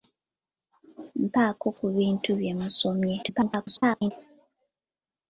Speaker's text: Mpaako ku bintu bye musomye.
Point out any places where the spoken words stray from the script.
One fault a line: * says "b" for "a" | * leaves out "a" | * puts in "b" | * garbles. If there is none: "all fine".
* garbles